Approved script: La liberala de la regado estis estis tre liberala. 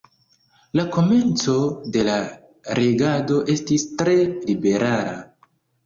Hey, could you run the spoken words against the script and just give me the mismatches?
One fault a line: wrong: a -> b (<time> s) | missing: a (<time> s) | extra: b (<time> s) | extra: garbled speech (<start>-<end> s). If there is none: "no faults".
wrong: liberala -> komenco (0.9 s)
missing: estis (3.9 s)